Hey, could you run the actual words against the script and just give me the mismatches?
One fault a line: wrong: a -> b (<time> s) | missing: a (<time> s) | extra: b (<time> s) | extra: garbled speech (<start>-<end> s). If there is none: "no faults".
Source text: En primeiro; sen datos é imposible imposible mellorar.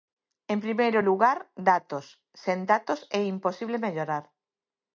extra: lugar datos (1.1 s)
missing: imposible (3.8 s)